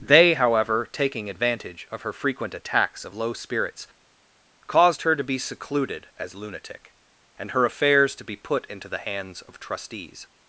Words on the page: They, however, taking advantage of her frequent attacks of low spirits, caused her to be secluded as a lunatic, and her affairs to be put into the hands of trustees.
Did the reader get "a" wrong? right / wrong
wrong